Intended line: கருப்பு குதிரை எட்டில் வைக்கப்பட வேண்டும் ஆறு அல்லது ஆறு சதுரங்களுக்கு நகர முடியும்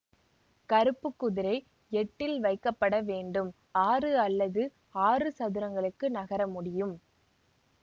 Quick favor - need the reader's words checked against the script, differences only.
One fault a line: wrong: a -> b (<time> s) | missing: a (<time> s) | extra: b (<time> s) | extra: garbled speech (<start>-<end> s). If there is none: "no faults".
no faults